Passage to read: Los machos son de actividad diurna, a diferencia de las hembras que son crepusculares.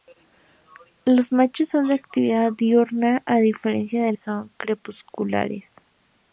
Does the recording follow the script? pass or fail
fail